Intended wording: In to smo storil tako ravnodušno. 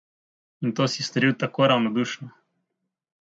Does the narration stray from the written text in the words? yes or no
yes